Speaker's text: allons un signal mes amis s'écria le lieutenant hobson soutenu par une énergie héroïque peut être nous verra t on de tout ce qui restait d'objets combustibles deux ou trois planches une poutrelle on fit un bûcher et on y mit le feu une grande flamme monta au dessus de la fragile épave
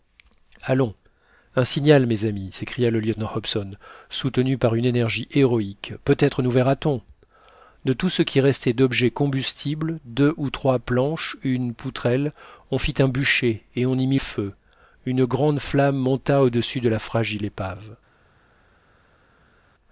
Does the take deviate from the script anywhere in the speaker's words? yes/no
yes